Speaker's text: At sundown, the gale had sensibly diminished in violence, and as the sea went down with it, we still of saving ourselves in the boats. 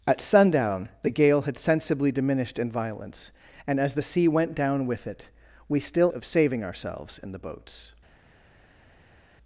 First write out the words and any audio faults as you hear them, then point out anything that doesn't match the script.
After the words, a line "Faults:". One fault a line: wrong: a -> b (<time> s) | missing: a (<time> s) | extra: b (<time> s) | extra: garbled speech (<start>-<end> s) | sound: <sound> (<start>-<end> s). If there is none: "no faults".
At sundown, the gale had sensibly diminished in violence, and as the sea went down with it, we still of saving ourselves in the boats.
Faults:
no faults